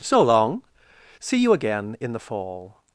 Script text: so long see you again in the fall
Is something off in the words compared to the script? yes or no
no